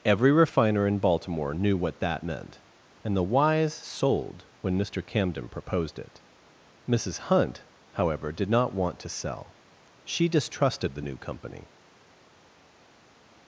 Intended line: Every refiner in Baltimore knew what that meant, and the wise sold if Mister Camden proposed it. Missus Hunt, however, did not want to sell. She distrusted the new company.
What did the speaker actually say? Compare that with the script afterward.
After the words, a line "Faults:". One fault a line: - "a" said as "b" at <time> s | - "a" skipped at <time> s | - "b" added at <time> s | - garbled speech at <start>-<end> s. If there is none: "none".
Every refiner in Baltimore knew what that meant, and the wise sold when Mister Camden proposed it. Missus Hunt, however, did not want to sell. She distrusted the new company.
Faults:
- "if" said as "when" at 4.6 s